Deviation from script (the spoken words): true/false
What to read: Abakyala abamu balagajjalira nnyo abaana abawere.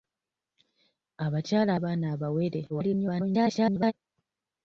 true